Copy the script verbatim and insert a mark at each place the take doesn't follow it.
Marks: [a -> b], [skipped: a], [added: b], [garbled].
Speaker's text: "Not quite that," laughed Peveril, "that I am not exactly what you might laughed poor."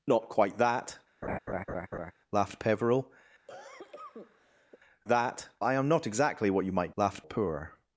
"Not quite that," laughed Peveril, "that I am not exactly what you might laughed poor."